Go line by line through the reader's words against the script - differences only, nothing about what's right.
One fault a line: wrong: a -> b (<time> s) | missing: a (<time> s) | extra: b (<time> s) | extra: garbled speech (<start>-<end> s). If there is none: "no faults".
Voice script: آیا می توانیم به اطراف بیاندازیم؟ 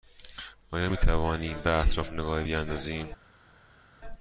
extra: نگاهی (2.1 s)